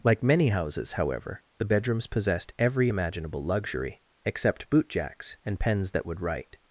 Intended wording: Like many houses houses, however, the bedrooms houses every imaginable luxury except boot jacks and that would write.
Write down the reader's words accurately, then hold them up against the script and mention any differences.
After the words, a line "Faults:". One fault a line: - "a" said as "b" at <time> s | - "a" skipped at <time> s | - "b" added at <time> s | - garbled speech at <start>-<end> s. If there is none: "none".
Like many houses, however, the bedrooms possessed every imaginable luxury except boot jacks and pens that would write.
Faults:
- "houses" skipped at 0.9 s
- "houses" said as "possessed" at 2.1 s
- "pens" added at 5.6 s